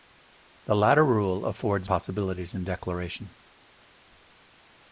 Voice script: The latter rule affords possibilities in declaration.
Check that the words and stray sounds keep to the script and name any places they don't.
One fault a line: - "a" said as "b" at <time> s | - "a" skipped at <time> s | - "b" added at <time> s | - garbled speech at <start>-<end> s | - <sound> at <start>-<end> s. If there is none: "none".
none